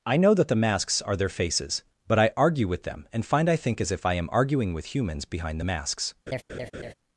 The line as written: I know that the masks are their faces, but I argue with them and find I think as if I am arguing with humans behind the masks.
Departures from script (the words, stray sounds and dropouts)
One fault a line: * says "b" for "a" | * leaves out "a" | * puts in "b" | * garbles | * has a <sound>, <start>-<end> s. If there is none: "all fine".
* has a laugh, 6.3-6.9 s